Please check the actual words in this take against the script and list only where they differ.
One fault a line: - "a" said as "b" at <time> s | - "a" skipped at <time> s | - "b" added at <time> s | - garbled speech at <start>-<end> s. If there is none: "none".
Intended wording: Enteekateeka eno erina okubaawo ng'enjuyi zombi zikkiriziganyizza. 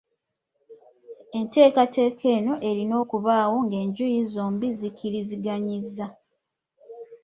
none